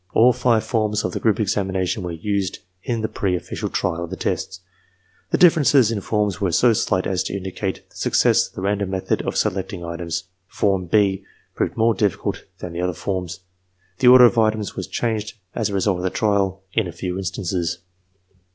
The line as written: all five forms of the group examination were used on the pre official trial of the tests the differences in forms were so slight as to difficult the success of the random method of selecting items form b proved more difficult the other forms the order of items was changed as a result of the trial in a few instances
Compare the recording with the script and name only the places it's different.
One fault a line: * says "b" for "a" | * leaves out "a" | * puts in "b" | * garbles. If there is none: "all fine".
* says "in" for "on"
* says "indicate" for "difficult"
* puts in "than"